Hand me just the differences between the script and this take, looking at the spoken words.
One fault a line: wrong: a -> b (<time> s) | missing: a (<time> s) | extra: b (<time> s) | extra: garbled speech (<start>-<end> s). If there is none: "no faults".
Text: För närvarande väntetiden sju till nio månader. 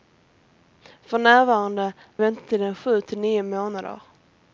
no faults